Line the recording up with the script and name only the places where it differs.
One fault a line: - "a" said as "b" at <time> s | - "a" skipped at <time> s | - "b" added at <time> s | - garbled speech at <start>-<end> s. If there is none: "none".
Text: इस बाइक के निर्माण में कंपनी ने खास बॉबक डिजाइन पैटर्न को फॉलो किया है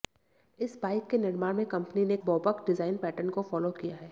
- "खास" skipped at 2.2 s